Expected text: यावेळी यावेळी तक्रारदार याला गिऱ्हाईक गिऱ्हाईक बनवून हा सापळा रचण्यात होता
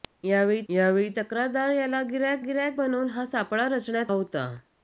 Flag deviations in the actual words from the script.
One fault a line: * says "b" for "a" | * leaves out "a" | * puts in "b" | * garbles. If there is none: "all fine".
all fine